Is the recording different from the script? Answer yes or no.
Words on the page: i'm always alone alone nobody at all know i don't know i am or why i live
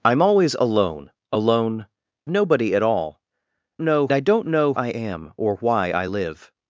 no